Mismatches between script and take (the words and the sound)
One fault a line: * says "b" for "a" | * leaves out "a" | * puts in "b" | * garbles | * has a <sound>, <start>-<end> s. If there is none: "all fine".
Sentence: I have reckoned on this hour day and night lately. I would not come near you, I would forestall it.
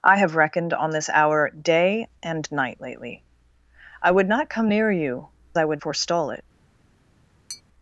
* has a tap, 7.5-7.6 s